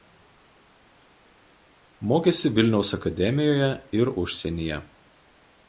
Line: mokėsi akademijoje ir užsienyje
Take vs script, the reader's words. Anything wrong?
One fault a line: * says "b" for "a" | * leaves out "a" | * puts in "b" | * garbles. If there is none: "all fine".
* puts in "vilniaus"